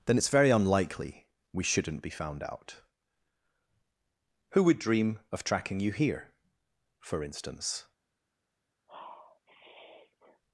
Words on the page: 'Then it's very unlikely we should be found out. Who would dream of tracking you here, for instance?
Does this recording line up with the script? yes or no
no